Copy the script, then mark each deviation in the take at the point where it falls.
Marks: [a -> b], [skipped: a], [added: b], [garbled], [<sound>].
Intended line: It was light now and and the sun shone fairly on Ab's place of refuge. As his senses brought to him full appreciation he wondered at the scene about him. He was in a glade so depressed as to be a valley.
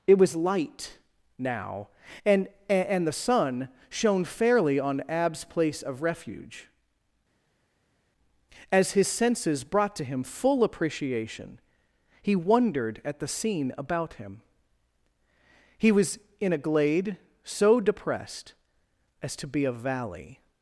It was light now and and the sun shone fairly on Ab's place of refuge. As his senses brought to him full appreciation he wondered at the scene about him. He was in a glade so depressed as to be a valley.